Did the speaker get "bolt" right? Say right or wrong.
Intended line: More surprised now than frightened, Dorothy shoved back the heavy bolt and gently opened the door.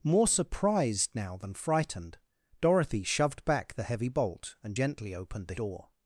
right